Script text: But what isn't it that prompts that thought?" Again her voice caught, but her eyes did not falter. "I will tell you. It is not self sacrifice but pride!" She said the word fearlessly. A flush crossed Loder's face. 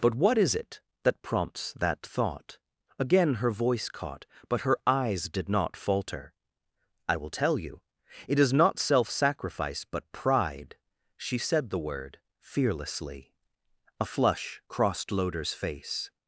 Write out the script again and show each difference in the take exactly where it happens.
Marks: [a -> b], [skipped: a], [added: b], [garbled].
But what [isn't -> is] it that prompts that thought?" Again her voice caught, but her eyes did not falter. "I will tell you. It is not self sacrifice but pride!" She said the word fearlessly. A flush crossed Loder's face.